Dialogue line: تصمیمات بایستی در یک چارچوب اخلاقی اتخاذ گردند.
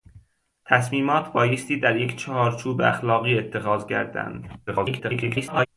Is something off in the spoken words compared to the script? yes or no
yes